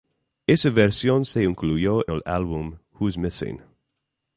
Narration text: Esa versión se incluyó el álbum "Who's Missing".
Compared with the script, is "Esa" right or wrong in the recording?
right